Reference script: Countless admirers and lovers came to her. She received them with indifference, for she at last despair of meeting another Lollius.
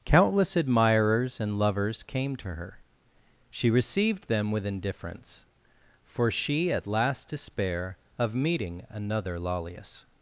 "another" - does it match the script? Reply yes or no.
yes